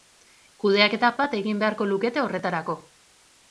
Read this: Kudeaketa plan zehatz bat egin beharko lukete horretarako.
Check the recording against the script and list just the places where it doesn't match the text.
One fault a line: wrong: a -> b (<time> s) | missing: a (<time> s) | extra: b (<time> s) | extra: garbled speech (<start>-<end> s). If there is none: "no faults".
missing: plan zehatz (1.1 s)